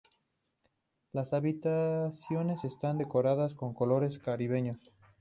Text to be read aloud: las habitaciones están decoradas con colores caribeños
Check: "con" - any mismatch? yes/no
no